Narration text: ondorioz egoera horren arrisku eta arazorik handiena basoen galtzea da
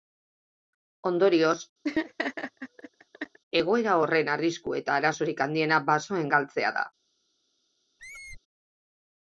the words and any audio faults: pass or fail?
fail